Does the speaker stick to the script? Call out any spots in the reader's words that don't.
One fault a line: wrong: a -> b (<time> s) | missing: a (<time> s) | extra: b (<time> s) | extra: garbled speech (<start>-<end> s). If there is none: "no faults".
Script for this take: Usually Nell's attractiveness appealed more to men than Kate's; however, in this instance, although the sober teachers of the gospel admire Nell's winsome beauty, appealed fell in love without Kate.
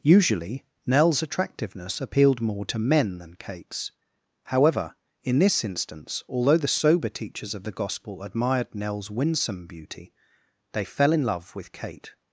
wrong: admire -> admired (8.2 s)
wrong: appealed -> they (10.7 s)
wrong: without -> with (11.5 s)